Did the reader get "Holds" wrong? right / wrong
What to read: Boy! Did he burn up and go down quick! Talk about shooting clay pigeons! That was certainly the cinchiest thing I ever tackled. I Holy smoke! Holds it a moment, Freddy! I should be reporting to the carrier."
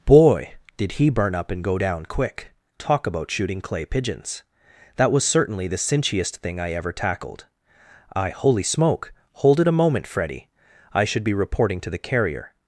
wrong